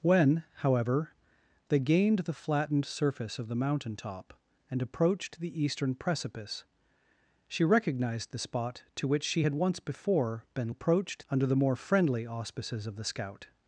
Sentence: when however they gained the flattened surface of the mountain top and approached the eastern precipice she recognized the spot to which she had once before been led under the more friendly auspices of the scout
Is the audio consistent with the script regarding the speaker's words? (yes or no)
no